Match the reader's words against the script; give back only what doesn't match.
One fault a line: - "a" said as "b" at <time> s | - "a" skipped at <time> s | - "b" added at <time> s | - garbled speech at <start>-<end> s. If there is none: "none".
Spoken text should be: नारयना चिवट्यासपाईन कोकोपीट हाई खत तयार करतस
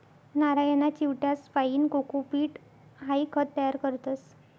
none